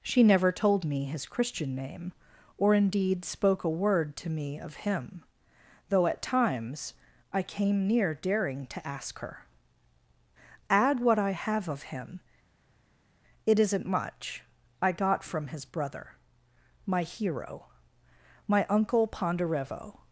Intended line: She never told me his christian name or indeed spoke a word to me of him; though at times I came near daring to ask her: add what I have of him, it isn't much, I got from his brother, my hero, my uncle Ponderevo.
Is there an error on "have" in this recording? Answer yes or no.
no